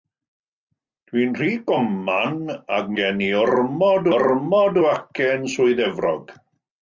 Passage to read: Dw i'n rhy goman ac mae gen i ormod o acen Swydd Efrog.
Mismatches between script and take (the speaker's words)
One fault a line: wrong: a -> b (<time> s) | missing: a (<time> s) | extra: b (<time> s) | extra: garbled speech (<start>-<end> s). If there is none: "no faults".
missing: mae (2.9 s)
extra: ormod (4.2 s)